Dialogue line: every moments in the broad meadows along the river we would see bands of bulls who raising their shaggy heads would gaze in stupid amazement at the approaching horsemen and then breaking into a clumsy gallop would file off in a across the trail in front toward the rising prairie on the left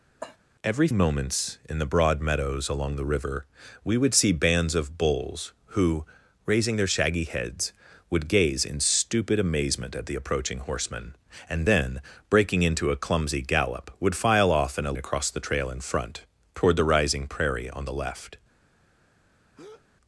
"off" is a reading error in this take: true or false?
false